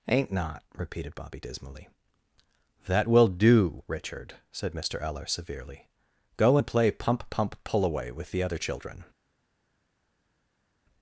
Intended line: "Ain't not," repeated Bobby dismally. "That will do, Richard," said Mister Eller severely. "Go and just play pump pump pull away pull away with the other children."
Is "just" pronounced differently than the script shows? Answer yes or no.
yes